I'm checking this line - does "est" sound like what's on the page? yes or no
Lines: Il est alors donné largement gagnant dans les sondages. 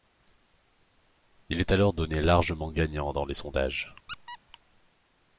yes